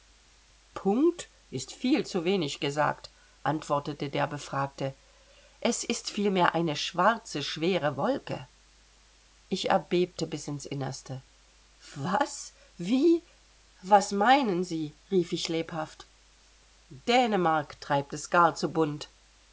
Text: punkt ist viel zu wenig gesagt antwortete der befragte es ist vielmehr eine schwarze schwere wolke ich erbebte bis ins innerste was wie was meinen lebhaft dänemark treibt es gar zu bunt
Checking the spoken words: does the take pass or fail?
fail